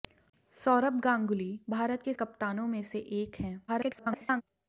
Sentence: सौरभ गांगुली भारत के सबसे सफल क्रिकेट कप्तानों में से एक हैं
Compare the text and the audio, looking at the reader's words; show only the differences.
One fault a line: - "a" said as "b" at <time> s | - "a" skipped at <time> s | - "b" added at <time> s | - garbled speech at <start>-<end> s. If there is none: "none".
- "सबसे सफल क्रिकेट" skipped at 2.1 s
- garbled speech at 3.7-4.4 s